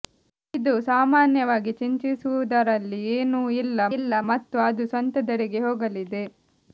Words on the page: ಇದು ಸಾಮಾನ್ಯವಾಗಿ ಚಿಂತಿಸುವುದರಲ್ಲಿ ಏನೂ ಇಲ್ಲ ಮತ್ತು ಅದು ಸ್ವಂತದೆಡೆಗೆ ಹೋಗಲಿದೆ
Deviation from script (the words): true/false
true